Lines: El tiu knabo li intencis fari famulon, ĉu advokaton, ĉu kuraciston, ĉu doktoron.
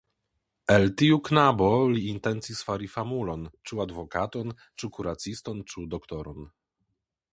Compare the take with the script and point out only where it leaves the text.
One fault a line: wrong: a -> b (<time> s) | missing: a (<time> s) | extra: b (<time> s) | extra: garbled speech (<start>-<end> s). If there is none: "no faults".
no faults